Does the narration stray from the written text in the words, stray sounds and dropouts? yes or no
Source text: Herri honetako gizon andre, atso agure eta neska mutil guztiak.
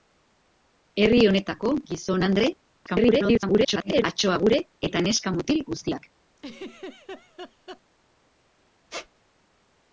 yes